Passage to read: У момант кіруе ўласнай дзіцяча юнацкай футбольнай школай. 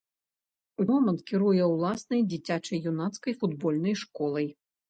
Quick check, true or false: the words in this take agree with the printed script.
true